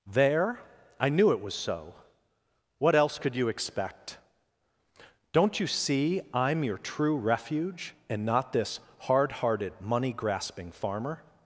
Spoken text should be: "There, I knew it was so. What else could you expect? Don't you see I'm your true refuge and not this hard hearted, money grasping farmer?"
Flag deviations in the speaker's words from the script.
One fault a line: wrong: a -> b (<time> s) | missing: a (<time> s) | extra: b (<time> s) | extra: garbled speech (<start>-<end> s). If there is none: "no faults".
no faults